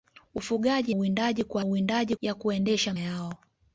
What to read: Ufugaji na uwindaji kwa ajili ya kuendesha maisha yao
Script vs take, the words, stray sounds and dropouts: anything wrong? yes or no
yes